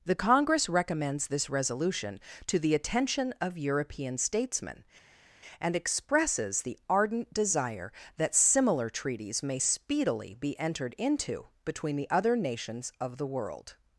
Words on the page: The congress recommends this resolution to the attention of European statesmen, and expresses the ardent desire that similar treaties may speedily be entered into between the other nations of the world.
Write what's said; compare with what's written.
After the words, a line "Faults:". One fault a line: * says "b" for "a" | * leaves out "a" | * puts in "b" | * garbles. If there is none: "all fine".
The congress recommends this resolution to the attention of European statesmen, and expresses the ardent desire that similar treaties may speedily be entered into between the other nations of the world.
Faults:
all fine